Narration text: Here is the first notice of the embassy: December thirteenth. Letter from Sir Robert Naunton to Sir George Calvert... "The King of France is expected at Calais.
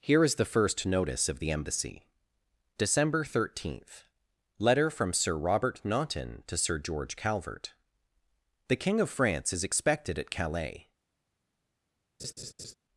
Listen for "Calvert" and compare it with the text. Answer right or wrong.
right